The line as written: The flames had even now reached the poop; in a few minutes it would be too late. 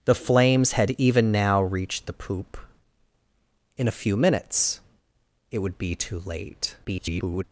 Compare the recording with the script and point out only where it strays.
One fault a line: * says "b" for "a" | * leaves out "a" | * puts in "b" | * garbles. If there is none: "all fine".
* garbles